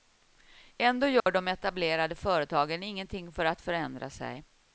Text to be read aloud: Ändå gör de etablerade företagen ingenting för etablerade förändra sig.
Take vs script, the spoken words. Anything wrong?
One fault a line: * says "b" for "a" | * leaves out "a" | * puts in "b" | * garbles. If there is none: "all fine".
* says "att" for "etablerade"